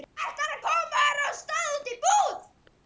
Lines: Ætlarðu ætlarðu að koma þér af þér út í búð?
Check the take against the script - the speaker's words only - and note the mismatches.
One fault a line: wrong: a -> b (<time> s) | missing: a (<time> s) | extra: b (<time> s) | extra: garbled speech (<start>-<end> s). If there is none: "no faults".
missing: ætlarðu (0.6 s)
wrong: þér -> stað (1.4 s)